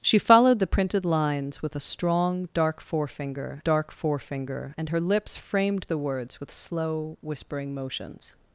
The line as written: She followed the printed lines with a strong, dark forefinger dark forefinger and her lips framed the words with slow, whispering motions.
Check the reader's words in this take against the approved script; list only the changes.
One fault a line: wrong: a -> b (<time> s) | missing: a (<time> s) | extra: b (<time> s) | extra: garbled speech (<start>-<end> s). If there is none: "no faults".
no faults